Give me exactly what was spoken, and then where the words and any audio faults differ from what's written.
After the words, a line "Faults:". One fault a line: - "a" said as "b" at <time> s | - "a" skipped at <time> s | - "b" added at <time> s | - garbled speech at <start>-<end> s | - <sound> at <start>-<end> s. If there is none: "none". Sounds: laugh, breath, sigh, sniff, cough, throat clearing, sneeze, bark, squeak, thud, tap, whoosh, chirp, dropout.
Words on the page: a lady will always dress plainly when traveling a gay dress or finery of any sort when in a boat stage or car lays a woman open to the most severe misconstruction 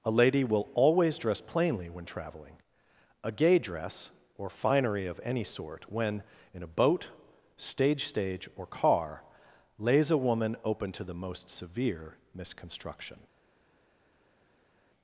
a lady will always dress plainly when traveling a gay dress or finery of any sort when in a boat stage stage or car lays a woman open to the most severe misconstruction
Faults:
- "stage" added at 8.1 s